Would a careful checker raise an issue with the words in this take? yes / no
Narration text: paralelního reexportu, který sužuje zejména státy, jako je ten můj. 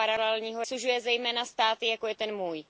yes